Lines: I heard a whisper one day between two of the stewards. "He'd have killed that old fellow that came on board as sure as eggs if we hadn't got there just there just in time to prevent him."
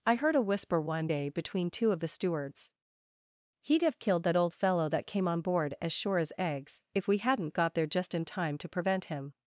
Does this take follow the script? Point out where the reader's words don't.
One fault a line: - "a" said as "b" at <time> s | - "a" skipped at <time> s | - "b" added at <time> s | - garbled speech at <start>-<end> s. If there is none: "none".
- "there just" skipped at 8.1 s